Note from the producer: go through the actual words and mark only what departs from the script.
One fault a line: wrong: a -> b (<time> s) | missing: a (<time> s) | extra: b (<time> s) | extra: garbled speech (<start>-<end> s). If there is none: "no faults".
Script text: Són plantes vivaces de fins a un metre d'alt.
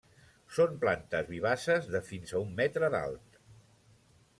no faults